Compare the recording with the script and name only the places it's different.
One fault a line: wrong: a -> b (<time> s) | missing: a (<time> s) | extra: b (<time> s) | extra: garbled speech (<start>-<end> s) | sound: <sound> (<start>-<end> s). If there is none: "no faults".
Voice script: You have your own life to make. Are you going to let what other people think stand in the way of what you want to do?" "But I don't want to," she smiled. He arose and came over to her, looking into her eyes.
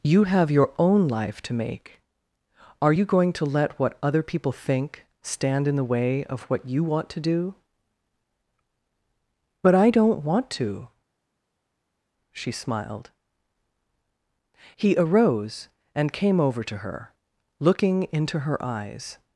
no faults